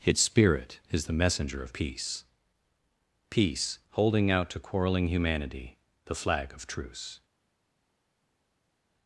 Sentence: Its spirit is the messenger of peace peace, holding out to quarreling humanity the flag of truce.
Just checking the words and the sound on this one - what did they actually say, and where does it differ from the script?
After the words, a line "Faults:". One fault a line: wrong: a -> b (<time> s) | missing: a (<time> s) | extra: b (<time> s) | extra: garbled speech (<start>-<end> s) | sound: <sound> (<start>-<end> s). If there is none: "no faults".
Its spirit is the messenger of peace peace, holding out to quarreling humanity the flag of truce.
Faults:
no faults